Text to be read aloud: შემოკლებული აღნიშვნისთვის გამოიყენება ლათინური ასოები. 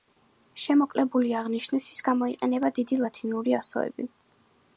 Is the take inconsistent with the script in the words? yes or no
yes